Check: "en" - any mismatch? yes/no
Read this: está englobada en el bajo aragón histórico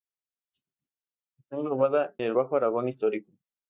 yes